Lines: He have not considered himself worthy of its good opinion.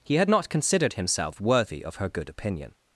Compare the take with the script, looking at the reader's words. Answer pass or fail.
fail